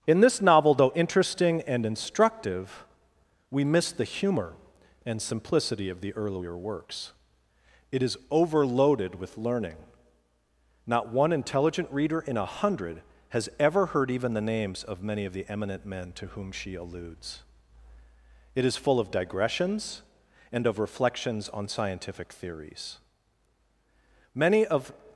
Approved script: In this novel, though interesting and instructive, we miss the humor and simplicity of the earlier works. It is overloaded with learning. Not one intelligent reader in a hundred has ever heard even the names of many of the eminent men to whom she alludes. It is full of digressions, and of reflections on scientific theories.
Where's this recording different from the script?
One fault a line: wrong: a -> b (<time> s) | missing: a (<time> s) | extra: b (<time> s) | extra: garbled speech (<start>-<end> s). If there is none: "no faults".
extra: Many of (24.4 s)